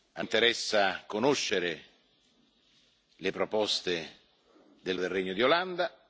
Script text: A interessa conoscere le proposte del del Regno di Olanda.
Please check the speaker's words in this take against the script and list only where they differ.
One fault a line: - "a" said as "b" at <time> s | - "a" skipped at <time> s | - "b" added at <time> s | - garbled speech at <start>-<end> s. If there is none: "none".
none